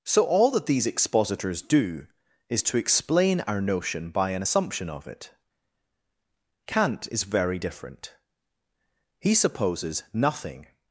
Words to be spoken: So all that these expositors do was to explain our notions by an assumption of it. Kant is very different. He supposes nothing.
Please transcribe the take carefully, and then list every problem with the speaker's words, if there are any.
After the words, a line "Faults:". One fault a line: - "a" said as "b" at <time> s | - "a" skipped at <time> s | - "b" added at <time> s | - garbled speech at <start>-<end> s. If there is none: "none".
So all that these expositors do is to explain our notion by an assumption of it. Kant is very different. He supposes nothing.
Faults:
- "was" said as "is" at 2.5 s
- "notions" said as "notion" at 3.6 s